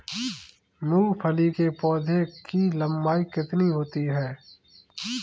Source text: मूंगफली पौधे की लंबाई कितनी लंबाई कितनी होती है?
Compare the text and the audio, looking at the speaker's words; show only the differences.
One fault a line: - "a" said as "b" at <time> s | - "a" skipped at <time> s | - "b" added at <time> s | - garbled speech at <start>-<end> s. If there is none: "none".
- "के" added at 1.5 s
- "लंबाई कितनी" skipped at 3.7 s